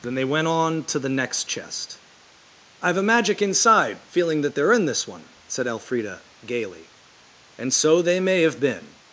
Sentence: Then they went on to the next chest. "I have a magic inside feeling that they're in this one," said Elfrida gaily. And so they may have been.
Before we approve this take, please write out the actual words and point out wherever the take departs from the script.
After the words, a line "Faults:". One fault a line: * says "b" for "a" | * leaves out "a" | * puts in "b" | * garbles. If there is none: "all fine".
Then they went on to the next chest. "I have a magic inside feeling that they're in this one," said Elfrida gaily. And so they may have been.
Faults:
all fine